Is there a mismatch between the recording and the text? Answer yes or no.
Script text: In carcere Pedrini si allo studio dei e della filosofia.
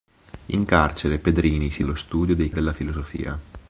no